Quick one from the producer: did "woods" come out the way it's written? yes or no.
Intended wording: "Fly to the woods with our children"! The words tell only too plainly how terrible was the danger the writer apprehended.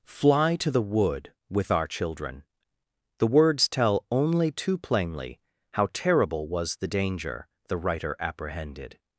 no